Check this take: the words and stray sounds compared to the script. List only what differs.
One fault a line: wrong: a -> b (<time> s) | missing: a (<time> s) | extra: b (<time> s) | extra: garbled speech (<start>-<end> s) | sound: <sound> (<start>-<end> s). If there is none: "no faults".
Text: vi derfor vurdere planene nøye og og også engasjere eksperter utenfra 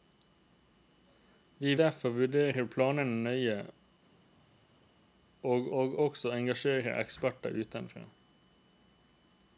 no faults